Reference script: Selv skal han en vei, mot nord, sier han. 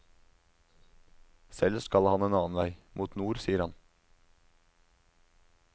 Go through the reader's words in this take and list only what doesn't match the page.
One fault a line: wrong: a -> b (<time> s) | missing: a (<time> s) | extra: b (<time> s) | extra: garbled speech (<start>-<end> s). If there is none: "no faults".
extra: annen (2.4 s)